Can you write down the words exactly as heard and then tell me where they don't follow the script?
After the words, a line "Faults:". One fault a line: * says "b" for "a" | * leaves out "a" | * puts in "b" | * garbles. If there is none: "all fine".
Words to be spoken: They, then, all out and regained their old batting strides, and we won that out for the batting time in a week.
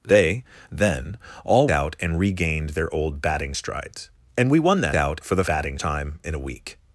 They, then, all out and regained their old batting strides, and we won that out for the batting time in a week.
Faults:
all fine